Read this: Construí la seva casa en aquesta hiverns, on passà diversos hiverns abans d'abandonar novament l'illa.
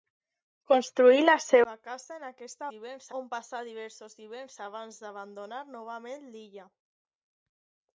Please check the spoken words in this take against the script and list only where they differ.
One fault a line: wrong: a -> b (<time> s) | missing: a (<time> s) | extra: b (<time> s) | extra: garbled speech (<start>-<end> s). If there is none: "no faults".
no faults